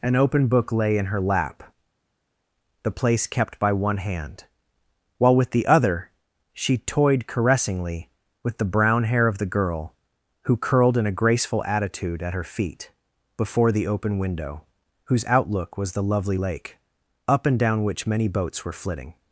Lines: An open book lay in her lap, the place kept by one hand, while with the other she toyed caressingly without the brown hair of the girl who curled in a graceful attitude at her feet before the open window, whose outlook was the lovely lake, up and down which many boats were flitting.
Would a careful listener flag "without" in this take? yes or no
yes